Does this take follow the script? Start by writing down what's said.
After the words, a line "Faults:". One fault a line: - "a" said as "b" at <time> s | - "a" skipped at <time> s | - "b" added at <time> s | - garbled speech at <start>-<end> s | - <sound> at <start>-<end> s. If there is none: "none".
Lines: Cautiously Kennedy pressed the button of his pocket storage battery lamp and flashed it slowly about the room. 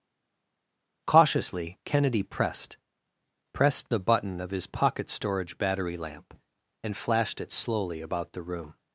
Cautiously Kennedy pressed pressed the button of his pocket storage battery lamp and flashed it slowly about the room.
Faults:
- "pressed" added at 3.5 s